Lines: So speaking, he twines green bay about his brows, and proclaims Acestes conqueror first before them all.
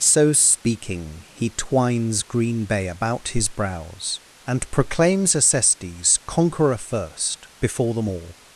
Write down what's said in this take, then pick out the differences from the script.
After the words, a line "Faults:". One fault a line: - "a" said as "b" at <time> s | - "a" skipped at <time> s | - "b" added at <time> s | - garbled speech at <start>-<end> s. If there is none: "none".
So speaking, he twines green bay about his brows, and proclaims Acestes conqueror first before them all.
Faults:
none